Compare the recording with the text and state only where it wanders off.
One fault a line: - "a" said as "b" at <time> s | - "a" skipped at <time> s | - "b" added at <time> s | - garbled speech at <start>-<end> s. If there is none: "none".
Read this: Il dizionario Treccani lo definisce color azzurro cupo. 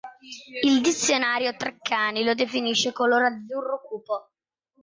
none